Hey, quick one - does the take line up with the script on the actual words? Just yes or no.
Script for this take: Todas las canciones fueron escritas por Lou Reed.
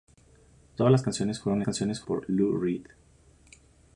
no